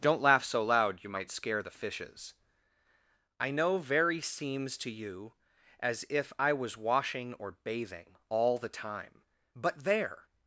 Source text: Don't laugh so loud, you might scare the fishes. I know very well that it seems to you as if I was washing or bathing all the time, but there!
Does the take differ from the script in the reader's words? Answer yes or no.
yes